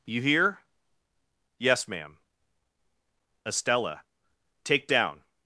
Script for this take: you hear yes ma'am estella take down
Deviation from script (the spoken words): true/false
false